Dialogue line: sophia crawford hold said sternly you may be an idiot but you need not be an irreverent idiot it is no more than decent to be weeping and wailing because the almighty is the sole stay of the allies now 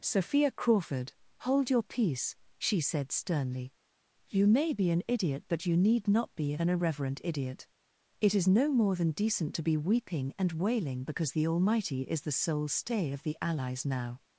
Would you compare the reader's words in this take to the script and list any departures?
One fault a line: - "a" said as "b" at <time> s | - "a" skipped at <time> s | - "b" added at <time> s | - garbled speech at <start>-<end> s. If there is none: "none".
- "your peace she" added at 1.7 s